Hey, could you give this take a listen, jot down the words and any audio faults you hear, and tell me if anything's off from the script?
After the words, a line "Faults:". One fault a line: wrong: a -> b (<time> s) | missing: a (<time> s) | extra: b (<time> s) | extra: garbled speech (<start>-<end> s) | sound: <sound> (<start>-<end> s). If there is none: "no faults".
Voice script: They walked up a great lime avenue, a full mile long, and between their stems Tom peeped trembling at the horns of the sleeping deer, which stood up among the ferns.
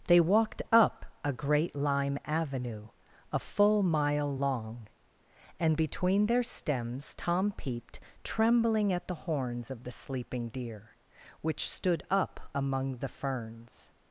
They walked up a great lime avenue, a full mile long, and between their stems Tom peeped trembling at the horns of the sleeping deer, which stood up among the ferns.
Faults:
no faults